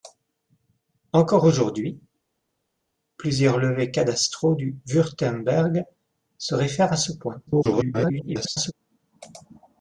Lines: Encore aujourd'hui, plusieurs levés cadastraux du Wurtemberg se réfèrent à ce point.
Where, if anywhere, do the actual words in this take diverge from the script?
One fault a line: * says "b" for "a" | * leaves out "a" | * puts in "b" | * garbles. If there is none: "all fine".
* garbles